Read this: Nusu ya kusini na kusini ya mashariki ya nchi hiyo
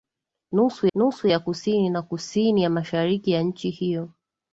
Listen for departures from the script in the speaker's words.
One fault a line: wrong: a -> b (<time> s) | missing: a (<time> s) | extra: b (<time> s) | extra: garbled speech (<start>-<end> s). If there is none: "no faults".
extra: nusu (0.9 s)